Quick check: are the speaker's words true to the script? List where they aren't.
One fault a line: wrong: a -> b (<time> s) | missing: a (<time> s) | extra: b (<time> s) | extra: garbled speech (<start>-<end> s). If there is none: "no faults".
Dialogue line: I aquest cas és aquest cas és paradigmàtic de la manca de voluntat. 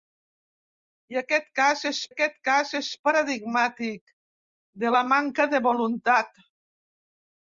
no faults